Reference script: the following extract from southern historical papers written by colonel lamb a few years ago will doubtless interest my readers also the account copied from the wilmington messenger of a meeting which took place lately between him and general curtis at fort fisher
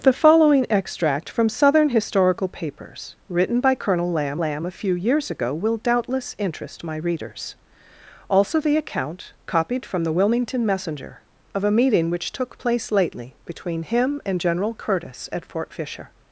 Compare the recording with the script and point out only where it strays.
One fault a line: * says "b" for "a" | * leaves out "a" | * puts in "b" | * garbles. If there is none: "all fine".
* puts in "lamb"